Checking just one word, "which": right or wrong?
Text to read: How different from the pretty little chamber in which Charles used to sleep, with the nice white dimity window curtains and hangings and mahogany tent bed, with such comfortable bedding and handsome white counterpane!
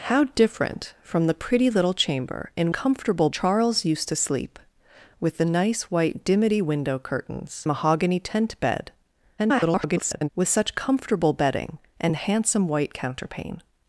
wrong